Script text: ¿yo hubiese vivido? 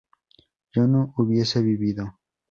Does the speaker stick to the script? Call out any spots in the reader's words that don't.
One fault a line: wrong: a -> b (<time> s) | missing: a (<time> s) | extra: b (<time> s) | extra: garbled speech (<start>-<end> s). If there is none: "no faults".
extra: no (0.9 s)